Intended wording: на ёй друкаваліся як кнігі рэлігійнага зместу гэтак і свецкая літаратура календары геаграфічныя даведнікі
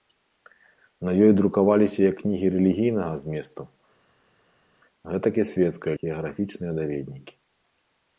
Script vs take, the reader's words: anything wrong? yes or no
yes